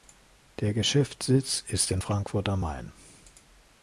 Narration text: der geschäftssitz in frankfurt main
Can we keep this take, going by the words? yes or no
no